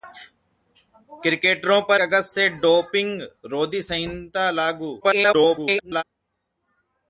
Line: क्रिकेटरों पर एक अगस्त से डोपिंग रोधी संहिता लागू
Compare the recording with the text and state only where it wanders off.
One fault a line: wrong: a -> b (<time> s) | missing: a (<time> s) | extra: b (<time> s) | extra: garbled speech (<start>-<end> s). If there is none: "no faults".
missing: एक (2.0 s)
extra: garbled speech (5.0-6.0 s)